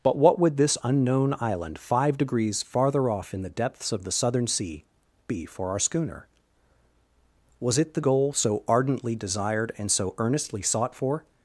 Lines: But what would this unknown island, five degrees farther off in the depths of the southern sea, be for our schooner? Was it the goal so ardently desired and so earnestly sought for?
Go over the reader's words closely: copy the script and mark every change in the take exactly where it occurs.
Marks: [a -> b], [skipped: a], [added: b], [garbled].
But what would this unknown island, five degrees farther off in the depths of the southern sea, be for our schooner? Was it the goal so ardently desired and so earnestly sought for?